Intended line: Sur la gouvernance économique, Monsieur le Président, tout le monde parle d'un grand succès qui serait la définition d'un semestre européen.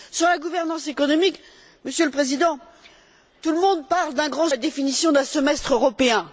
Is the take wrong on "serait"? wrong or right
wrong